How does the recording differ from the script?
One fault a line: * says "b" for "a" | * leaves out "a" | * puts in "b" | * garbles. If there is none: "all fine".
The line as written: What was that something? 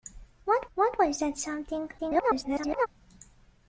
* puts in "what"
* garbles